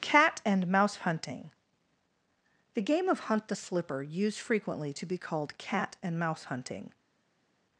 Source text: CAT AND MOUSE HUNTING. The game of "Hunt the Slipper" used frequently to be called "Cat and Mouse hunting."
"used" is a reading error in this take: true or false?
false